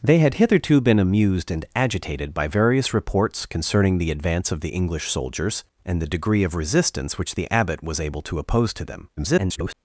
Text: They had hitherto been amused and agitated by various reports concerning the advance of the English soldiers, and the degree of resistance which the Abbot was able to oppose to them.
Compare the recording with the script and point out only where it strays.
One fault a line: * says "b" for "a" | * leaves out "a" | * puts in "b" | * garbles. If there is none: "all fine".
* garbles